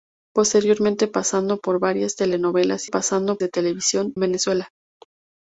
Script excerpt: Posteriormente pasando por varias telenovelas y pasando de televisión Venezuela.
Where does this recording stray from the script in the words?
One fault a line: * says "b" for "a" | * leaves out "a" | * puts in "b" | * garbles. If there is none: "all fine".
all fine